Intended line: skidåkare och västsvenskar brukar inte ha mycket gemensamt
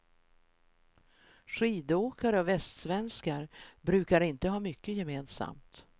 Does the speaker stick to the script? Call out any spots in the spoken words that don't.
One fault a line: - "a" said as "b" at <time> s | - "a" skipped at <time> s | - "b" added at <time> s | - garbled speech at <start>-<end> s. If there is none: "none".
none